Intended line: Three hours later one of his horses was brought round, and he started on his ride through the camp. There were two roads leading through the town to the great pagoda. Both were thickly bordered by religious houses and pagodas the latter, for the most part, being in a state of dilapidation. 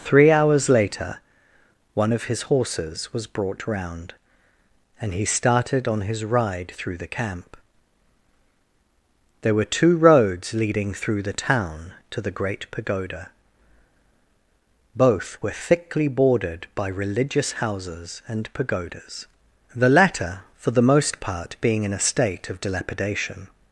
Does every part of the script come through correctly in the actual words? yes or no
yes